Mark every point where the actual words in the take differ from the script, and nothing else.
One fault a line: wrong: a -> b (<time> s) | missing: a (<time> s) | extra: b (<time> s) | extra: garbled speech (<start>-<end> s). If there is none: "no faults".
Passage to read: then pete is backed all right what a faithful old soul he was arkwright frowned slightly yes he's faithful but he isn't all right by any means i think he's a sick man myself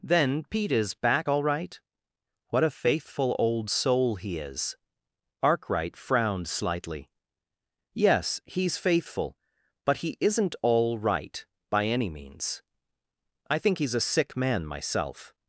wrong: backed -> back (0.9 s)
wrong: was -> is (4.4 s)